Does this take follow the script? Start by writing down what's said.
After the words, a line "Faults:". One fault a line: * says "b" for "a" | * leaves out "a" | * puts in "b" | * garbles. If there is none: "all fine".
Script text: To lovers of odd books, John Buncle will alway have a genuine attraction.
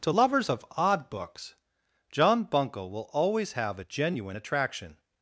To lovers of odd books, John Buncle will always have a genuine attraction.
Faults:
* says "always" for "alway"